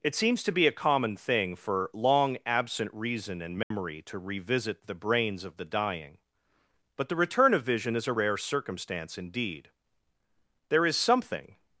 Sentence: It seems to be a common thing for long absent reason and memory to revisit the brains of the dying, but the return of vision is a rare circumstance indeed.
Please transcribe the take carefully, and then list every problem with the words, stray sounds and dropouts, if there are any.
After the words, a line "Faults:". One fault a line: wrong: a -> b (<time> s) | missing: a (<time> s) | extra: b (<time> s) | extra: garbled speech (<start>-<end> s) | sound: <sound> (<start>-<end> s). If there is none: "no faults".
It seems to be a common thing for long absent reason and memory to revisit the brains of the dying, but the return of vision is a rare circumstance indeed. There is something
Faults:
sound: dropout (3.6-3.7 s)
extra: There is something (10.7 s)